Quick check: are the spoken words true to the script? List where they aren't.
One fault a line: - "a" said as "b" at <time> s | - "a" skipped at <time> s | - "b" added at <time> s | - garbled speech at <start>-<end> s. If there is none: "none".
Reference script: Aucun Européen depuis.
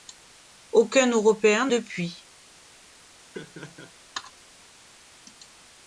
none